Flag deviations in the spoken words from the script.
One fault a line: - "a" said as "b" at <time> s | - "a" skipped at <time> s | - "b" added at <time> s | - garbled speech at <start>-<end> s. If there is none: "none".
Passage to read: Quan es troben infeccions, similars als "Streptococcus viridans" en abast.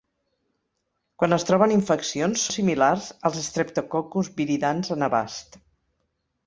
none